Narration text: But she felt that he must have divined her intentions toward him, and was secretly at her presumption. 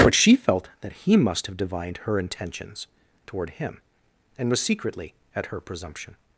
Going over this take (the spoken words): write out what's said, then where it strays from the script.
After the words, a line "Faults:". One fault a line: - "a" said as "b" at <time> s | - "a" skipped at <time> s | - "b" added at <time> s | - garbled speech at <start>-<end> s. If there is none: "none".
But she felt that he must have divined her intentions toward him, and was secretly at her presumption.
Faults:
none